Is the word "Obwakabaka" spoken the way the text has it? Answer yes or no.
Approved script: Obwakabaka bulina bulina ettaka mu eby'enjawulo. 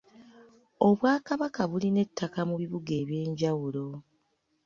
yes